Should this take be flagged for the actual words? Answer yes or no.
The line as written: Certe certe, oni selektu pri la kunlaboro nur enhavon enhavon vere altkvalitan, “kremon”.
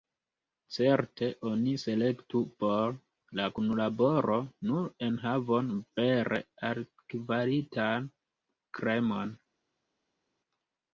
yes